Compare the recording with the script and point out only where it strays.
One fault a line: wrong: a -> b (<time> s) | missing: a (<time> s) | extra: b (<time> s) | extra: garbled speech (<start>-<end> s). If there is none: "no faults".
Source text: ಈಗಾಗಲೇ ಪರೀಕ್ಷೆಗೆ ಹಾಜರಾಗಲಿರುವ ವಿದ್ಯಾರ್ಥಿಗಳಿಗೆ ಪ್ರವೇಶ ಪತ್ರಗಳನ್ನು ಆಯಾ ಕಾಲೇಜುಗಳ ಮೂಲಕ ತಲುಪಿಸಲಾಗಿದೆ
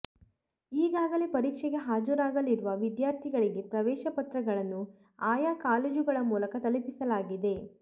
no faults